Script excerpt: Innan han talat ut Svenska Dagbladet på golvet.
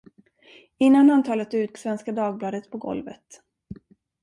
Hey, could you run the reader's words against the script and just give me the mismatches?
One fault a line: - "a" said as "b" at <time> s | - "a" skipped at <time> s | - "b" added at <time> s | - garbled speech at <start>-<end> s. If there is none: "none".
none